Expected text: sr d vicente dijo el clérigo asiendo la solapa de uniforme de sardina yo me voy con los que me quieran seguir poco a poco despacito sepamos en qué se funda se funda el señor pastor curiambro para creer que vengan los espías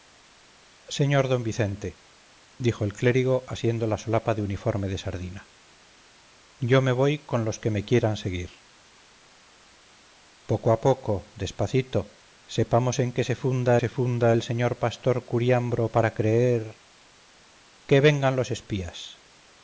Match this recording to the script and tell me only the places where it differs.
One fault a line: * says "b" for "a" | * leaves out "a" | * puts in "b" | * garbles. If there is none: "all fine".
all fine